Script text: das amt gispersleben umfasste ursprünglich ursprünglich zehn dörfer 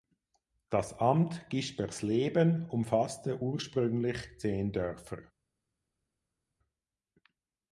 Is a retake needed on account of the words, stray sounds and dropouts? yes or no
yes